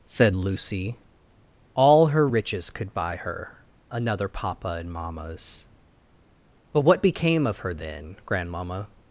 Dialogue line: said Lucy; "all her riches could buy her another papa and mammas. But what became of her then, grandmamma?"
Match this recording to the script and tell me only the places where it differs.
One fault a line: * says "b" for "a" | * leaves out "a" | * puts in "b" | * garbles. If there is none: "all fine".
all fine